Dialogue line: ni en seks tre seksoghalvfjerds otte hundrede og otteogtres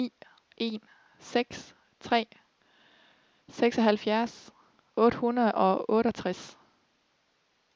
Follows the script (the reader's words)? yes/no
yes